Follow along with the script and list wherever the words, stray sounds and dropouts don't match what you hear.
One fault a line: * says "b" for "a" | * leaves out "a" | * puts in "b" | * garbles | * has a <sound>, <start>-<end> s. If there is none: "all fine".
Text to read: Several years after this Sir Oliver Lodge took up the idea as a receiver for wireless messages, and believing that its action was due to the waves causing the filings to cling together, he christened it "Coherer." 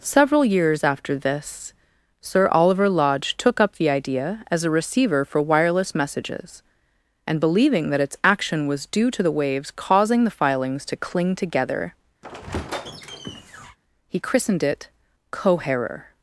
* has a squeak, 12.2-13.8 s